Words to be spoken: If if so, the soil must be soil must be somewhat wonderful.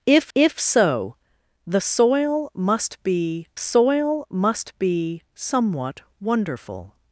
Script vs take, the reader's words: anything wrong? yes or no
no